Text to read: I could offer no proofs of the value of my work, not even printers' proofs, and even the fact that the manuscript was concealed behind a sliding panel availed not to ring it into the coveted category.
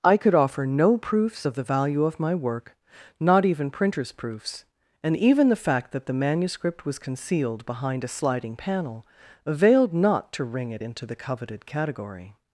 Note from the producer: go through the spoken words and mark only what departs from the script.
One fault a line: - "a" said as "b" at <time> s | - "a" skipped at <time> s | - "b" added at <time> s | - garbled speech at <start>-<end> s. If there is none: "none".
none